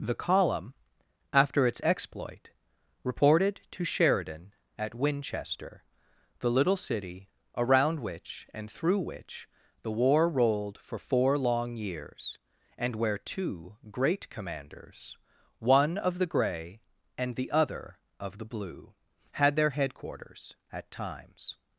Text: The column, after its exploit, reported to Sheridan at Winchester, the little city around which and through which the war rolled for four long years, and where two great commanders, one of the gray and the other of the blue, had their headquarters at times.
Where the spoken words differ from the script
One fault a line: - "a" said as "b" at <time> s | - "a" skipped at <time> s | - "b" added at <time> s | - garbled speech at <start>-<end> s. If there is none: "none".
none